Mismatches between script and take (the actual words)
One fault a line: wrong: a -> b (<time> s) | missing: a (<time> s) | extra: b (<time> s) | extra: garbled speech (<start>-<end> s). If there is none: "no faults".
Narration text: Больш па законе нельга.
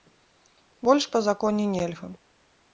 no faults